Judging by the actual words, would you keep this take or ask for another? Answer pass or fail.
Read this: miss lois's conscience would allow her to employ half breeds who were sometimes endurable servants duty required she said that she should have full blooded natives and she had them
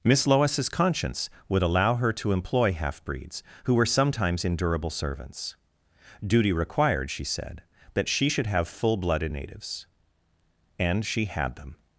pass